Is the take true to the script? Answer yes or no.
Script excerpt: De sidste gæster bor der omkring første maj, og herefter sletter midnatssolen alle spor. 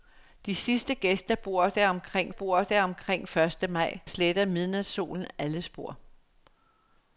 no